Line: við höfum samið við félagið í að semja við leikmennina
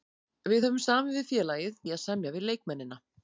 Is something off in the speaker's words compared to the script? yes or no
no